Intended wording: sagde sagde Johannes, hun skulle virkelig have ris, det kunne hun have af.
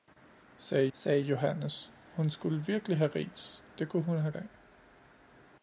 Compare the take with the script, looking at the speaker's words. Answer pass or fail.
pass